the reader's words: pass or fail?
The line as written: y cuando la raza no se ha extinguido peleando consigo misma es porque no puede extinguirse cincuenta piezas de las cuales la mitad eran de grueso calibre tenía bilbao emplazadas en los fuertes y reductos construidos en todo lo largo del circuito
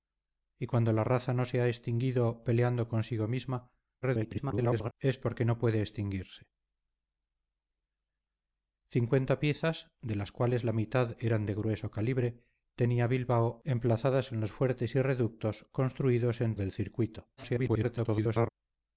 fail